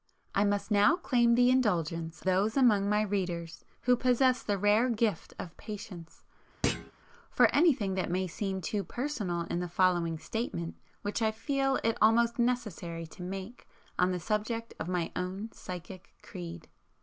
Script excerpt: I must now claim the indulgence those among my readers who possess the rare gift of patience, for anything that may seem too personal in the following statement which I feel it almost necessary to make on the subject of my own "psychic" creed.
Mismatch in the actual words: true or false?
false